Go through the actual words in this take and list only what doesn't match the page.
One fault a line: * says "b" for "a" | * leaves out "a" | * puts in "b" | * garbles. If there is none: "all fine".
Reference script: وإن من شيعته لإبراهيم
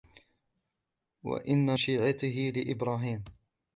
* leaves out "من"